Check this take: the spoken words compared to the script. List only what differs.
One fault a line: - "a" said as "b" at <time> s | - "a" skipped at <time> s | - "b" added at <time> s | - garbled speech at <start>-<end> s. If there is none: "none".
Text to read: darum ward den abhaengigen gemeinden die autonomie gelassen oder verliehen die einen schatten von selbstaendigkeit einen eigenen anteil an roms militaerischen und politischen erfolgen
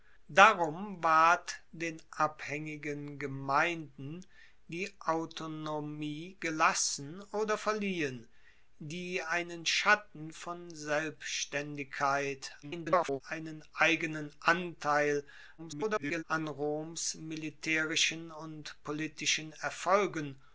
- garbled speech at 12.6-13.2 s
- garbled speech at 15.6-16.2 s